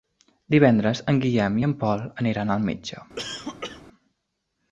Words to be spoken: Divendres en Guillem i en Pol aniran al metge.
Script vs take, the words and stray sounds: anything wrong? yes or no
yes